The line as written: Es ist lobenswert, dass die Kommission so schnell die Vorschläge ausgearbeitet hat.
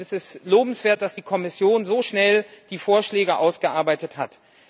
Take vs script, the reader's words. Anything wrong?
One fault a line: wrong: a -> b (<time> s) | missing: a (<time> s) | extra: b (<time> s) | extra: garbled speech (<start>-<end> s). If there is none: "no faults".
no faults